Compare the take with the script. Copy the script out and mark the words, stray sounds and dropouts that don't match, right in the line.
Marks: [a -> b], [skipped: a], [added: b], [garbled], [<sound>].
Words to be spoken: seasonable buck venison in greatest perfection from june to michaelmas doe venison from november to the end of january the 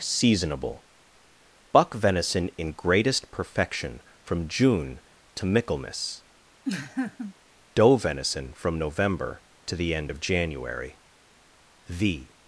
seasonable buck venison in greatest perfection from june to michaelmas [laugh] doe venison from november to the end of january the